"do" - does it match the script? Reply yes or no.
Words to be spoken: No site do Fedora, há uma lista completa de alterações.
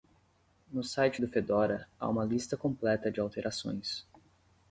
yes